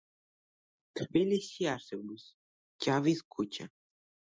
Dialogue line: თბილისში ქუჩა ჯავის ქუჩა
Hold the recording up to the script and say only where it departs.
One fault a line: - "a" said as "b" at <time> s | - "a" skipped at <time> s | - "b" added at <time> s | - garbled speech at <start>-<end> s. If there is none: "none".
- "ქუჩა" said as "არსებობს" at 1.7 s